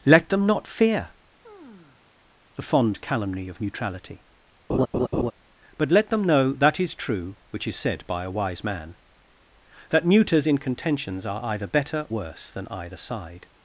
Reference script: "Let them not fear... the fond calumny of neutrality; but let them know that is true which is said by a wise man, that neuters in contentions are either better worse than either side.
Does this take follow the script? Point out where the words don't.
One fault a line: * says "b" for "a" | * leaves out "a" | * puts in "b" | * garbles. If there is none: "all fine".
all fine